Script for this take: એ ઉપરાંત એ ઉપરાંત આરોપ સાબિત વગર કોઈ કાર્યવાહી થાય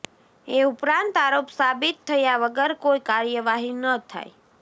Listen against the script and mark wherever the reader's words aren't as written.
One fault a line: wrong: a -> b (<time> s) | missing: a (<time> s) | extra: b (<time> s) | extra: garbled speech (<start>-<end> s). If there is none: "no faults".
missing: એ ઉપરાંત (1.1 s)
extra: થયા (2.1 s)
extra: ન (3.8 s)